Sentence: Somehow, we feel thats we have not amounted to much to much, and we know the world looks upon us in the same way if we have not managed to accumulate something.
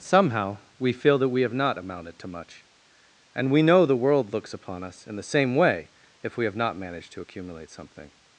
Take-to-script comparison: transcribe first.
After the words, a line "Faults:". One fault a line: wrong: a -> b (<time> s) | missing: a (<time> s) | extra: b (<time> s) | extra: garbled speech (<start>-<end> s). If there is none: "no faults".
Somehow, we feel that we have not amounted to much, and we know the world looks upon us in the same way if we have not managed to accumulate something.
Faults:
wrong: thats -> that (1.2 s)
missing: to much (2.6 s)